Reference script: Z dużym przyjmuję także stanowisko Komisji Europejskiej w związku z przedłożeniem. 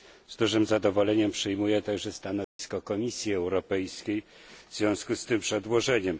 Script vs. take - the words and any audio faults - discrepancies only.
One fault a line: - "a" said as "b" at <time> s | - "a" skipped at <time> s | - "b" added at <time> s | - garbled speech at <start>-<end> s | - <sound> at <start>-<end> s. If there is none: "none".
- "zadowoleniem" added at 0.7 s
- dropout at 2.4-2.6 s
- "tym" added at 5.2 s